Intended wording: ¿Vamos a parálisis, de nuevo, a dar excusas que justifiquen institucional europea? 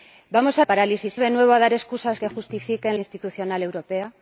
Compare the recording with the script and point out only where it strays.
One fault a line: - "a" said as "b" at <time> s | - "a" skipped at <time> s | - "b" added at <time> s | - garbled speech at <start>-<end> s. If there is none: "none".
none